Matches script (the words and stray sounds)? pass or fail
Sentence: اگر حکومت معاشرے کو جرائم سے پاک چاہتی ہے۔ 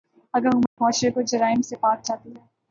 fail